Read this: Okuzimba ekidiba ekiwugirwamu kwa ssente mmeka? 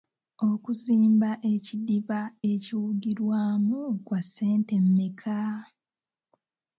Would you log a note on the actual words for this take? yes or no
no